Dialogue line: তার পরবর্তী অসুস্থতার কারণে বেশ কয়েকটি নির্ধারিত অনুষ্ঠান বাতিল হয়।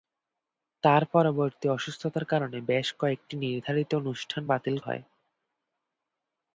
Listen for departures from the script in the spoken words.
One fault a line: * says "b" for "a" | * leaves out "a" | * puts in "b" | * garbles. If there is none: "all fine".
all fine